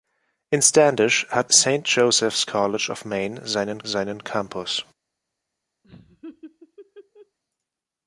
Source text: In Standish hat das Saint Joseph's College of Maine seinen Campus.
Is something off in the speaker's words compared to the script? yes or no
yes